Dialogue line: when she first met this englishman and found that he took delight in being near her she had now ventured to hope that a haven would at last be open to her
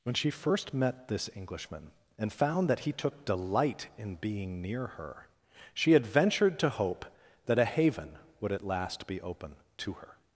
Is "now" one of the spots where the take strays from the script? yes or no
yes